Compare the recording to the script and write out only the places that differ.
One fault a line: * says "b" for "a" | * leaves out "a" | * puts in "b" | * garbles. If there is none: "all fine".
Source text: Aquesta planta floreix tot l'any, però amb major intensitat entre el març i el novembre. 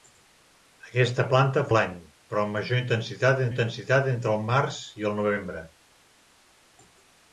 * leaves out "floreix tot"
* puts in "intensitat"